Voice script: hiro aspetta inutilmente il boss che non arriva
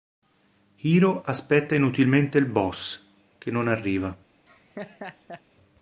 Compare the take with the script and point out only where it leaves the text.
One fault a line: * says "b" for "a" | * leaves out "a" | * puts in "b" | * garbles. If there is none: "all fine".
all fine